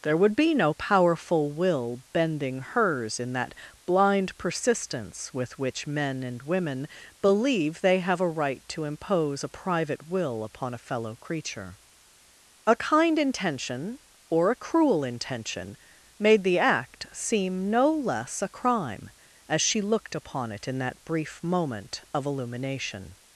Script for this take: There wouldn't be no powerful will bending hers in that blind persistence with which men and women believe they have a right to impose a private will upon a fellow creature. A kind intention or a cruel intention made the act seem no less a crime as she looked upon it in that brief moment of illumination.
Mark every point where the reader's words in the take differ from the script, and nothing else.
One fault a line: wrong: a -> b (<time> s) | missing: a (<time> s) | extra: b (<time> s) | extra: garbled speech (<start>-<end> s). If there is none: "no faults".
wrong: wouldn't -> would (0.2 s)